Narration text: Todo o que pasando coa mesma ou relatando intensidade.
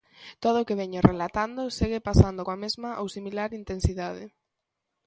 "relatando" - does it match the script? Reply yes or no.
no